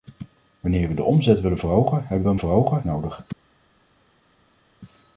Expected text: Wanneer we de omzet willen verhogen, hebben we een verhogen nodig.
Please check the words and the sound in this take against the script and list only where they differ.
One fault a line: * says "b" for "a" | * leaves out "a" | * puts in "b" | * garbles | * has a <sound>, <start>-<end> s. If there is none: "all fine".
all fine